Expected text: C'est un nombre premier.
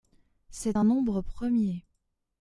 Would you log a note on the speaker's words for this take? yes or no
no